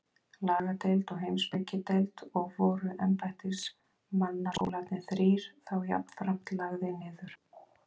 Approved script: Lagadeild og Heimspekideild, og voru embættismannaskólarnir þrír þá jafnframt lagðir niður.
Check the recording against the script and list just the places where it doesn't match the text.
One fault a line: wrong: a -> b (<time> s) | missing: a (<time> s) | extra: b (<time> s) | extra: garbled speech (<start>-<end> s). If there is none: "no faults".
no faults